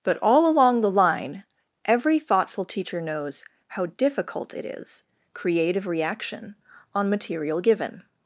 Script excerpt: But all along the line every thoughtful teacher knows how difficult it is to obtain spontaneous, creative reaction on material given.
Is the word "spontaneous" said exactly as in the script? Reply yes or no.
no